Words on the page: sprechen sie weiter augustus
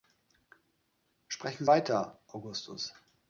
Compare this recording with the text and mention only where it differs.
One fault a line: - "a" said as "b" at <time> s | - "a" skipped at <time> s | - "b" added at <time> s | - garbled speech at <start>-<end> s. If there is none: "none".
- "sie" skipped at 1.6 s